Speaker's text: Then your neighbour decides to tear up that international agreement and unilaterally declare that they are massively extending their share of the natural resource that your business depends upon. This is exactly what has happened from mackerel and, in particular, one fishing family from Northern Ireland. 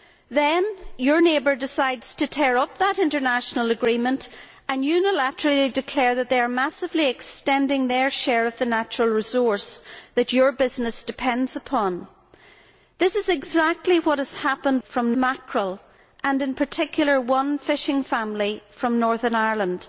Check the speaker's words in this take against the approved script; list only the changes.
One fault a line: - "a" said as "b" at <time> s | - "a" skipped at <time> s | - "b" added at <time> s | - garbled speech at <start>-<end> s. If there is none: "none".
none